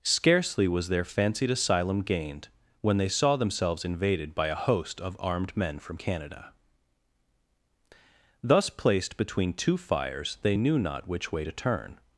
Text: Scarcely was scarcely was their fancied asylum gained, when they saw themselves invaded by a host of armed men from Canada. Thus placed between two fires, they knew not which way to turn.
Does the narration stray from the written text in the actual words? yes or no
yes